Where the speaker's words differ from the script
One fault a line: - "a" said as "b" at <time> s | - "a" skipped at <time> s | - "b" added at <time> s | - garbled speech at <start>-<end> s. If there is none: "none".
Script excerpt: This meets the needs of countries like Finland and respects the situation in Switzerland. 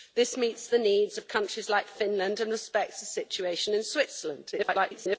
- garbled speech at 4.5-5.2 s